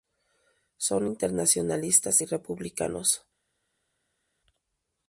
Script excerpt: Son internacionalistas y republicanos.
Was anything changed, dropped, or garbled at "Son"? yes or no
no